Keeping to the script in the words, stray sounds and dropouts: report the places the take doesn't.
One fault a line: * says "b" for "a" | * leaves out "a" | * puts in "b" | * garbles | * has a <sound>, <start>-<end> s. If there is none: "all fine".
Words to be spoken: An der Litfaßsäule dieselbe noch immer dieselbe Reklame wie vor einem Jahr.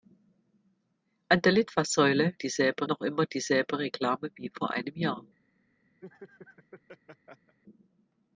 * has a laugh, 6.0-7.6 s